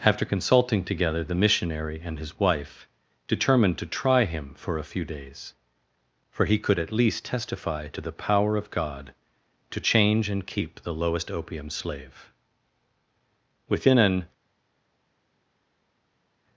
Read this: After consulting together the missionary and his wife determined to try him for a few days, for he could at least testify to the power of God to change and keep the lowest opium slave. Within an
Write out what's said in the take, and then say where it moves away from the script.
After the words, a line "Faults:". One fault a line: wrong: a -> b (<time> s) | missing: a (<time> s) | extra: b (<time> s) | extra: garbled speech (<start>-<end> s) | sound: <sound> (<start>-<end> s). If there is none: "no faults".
After consulting together the missionary and his wife determined to try him for a few days, for he could at least testify to the power of God to change and keep the lowest opium slave. Within an
Faults:
no faults